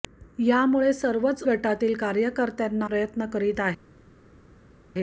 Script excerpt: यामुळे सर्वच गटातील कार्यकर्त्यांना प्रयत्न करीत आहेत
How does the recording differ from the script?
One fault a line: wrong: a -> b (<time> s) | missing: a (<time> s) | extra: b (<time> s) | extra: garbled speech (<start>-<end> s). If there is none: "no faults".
no faults